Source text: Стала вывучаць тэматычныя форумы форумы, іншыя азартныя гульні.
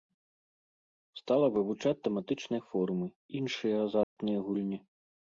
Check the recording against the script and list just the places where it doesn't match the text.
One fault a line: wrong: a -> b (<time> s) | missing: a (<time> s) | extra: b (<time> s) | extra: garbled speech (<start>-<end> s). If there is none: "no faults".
missing: форумы (3.1 s)